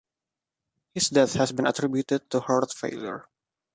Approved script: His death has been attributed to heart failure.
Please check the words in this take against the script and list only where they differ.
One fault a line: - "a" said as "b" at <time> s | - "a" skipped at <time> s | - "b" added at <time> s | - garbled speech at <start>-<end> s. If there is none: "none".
none